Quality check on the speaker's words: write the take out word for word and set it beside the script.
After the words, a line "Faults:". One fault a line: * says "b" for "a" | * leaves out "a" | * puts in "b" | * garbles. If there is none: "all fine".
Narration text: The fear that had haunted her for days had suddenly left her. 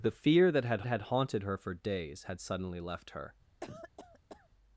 The fear that had had haunted her for days had suddenly left her.
Faults:
* puts in "had"